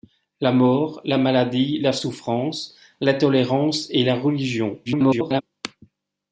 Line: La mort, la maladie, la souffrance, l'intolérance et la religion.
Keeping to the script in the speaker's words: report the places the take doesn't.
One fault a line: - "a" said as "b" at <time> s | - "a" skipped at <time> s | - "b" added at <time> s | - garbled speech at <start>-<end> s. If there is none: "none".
- garbled speech at 4.9-5.4 s